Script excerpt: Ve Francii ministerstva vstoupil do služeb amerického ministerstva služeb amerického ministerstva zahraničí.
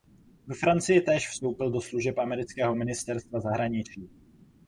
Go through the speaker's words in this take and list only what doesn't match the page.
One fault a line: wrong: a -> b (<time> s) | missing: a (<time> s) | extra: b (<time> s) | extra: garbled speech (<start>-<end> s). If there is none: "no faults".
wrong: ministerstva -> též (1.0 s)
missing: služeb amerického ministerstva (3.4 s)